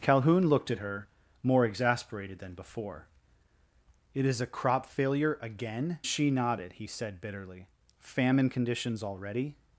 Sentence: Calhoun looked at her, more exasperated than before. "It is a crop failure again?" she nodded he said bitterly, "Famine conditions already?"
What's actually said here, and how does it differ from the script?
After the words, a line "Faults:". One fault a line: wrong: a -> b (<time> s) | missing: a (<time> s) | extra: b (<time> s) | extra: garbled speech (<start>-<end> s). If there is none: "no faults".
Calhoun looked at her, more exasperated than before. "It is a crop failure again?" she nodded he said bitterly, "Famine conditions already?"
Faults:
no faults